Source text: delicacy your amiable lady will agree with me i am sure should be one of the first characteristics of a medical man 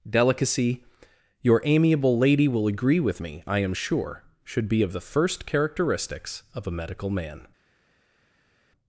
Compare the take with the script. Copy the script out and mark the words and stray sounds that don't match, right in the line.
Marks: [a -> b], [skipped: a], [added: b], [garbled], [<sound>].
delicacy your amiable lady will agree with me i am sure should be [skipped: one] of the first characteristics of a medical man